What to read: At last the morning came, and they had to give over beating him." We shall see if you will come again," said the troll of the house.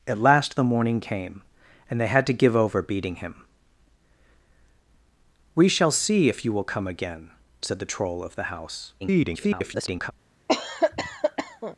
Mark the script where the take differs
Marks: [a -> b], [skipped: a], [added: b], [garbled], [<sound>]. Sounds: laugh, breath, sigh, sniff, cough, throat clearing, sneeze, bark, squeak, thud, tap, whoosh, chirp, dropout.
At last the morning came, and they had to give over beating him." We shall see if you will come again," said the troll of the house. [garbled] [cough]